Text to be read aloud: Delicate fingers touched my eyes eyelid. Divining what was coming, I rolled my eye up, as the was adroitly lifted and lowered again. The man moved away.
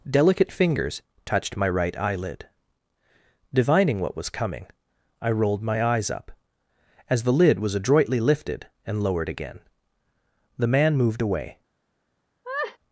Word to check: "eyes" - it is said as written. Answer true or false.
false